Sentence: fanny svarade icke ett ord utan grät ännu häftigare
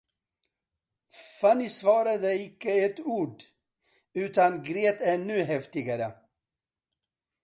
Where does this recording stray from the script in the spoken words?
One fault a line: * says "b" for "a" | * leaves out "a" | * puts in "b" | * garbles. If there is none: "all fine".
all fine